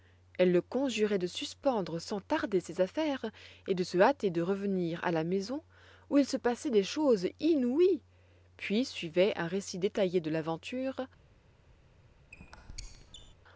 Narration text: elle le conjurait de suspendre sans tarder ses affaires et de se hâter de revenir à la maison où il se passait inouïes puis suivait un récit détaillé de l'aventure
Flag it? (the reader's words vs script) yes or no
yes